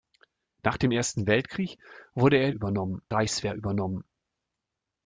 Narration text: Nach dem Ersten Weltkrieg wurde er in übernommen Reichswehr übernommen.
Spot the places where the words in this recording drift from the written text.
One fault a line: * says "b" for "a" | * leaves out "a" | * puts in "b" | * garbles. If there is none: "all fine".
all fine